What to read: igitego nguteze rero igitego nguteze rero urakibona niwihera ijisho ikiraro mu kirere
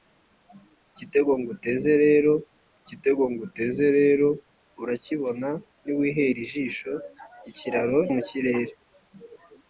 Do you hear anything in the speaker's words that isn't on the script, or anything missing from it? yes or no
no